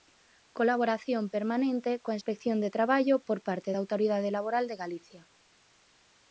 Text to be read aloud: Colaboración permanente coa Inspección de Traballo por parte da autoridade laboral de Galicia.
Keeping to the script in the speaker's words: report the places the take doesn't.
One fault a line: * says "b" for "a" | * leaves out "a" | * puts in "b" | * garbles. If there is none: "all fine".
all fine